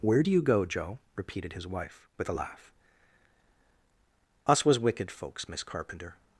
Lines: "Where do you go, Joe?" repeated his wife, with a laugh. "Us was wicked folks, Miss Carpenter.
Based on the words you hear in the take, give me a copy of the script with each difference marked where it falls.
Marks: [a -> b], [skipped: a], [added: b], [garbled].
"Where do you go, Joe?" repeated his wife, with a laugh. "Us was wicked folks, Miss Carpenter.